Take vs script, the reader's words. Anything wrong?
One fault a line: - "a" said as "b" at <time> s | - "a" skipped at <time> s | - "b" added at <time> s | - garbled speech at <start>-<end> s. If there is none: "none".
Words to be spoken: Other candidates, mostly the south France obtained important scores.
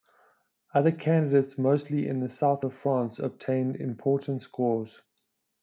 - "in" added at 2.1 s
- "of" added at 2.6 s